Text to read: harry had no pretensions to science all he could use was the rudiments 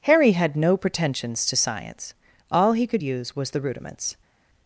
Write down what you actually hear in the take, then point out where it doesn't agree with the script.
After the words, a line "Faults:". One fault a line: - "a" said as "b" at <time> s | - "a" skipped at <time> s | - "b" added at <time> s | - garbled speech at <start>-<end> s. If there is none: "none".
harry had no pretensions to science all he could use was the rudiments
Faults:
none